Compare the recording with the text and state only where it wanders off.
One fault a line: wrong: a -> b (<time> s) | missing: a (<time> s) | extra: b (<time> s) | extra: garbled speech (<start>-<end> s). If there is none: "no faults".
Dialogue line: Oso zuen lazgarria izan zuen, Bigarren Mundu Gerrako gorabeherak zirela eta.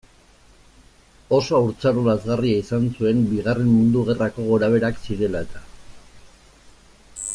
wrong: zuen -> haurtzaro (1.6 s)